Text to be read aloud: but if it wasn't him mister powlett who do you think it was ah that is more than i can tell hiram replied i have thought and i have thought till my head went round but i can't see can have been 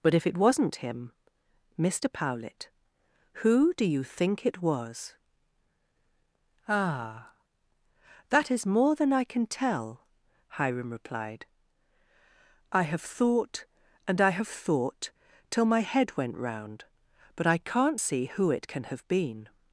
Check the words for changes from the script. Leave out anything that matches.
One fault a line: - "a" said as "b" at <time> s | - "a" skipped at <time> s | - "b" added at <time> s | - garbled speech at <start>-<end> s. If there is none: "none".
- "who it" added at 18.3 s